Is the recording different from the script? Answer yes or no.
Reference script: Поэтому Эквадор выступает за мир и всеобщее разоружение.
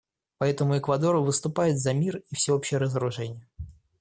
no